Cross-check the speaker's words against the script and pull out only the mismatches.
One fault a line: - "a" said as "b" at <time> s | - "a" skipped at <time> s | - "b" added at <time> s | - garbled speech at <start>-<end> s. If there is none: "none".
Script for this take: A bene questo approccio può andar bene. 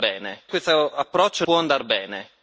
none